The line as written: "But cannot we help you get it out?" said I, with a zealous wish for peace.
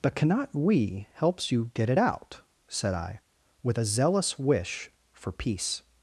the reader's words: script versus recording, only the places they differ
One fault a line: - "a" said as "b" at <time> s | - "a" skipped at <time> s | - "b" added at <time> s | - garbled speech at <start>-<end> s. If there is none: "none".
- "help" said as "helps" at 1.1 s